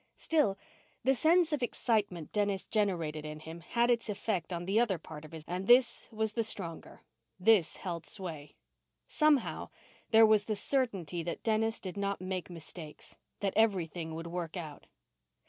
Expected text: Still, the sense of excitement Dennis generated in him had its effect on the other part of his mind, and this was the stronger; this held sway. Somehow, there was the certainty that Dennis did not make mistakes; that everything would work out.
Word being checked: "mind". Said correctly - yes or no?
no